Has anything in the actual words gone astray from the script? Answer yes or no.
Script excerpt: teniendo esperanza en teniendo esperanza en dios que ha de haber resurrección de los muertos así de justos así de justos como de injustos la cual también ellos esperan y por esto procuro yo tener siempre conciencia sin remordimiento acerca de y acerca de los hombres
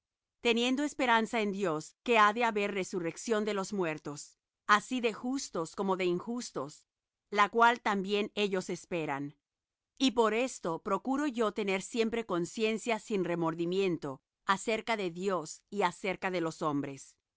yes